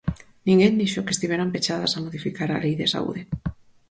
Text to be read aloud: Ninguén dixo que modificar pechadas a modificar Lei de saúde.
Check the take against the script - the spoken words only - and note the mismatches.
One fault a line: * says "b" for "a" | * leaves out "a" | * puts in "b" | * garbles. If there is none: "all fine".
* says "estiveran" for "modificar"
* puts in "a"